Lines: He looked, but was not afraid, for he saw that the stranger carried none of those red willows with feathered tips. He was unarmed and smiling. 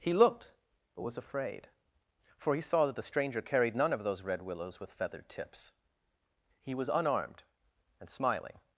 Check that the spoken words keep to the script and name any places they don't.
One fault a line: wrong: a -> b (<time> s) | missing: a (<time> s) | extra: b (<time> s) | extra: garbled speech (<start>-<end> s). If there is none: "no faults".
missing: not (1.1 s)